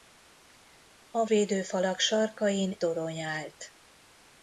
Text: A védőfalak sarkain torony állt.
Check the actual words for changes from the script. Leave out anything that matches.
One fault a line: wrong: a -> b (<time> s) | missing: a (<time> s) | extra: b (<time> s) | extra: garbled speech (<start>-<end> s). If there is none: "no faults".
no faults